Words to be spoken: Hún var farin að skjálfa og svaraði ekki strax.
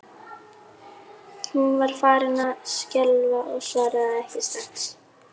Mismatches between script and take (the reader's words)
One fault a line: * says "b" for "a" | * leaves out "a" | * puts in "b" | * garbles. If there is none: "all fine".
all fine